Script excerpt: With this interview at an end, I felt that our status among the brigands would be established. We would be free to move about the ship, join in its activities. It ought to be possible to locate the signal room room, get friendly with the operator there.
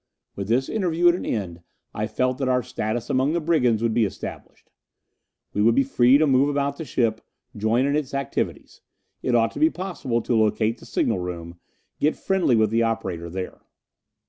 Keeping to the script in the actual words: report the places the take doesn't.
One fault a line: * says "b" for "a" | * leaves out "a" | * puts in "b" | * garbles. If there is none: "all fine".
* leaves out "room"